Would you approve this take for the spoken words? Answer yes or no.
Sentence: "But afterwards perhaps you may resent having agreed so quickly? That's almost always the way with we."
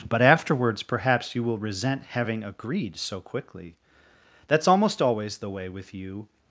no